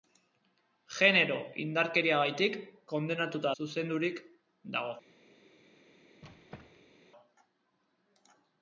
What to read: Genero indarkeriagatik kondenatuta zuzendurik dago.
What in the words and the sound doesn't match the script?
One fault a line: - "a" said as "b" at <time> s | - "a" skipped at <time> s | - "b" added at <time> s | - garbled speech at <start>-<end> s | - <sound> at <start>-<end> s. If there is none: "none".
- squeak at 6.2-7.0 s